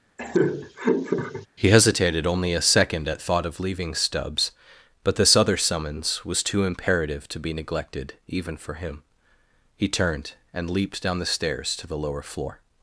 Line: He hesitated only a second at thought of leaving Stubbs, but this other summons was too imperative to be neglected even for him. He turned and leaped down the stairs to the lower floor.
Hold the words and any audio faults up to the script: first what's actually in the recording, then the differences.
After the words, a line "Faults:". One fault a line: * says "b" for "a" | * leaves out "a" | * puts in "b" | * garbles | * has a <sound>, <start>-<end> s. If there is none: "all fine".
He hesitated only a second at thought of leaving Stubbs, but this other summons was too imperative to be neglected even for him. He turned and leaped down the stairs to the lower floor.
Faults:
* has a laugh, 0.2-1.5 s